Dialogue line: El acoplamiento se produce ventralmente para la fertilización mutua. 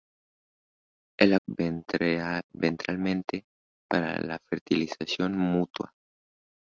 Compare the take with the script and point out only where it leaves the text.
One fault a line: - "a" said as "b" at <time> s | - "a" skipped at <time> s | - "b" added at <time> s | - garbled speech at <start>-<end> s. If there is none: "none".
- "acoplamiento se produce" skipped at 1.4 s